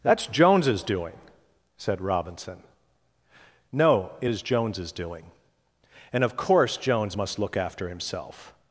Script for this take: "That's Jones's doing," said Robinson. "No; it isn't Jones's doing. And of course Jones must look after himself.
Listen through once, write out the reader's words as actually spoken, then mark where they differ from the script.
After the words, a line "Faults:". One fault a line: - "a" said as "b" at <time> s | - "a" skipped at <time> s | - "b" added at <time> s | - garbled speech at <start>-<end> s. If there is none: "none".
"That's Jones's doing," said Robinson. "No; it is Jones's doing. And of course Jones must look after himself.
Faults:
- "isn't" said as "is" at 4.3 s